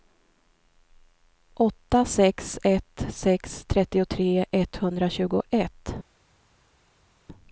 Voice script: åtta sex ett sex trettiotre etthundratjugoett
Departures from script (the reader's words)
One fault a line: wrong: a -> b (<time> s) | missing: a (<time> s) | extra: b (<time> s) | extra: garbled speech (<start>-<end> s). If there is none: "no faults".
no faults